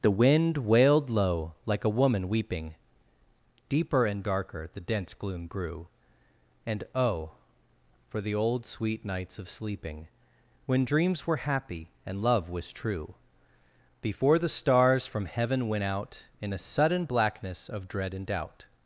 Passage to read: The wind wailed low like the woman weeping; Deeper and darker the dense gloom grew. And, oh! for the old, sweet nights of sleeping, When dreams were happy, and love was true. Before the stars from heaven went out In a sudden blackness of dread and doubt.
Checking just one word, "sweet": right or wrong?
right